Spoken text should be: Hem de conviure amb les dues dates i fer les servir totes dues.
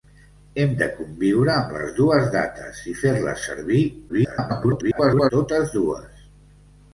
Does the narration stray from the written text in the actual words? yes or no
yes